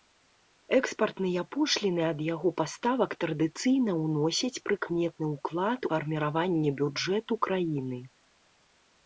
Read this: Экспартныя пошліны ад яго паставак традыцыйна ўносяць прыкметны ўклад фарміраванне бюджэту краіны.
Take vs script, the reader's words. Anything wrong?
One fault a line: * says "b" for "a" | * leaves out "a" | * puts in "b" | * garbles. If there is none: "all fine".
all fine